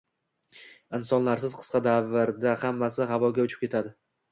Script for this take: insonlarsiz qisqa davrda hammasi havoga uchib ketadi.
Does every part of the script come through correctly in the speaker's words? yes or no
yes